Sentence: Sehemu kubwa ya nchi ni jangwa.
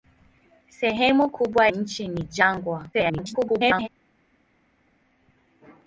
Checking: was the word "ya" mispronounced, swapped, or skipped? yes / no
yes